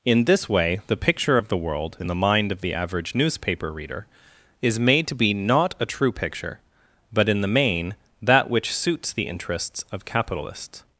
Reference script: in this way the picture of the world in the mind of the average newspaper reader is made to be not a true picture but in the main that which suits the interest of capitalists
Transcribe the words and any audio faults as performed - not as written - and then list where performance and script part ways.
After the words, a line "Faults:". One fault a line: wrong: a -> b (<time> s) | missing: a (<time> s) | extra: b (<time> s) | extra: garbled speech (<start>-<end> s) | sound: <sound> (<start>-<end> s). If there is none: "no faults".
in this way the picture of the world in the mind of the average newspaper reader is made to be not a true picture but in the main that which suits the interests of capitalists
Faults:
wrong: interest -> interests (9.3 s)